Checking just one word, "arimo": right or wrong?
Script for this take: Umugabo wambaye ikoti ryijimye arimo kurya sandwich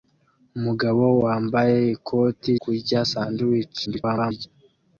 wrong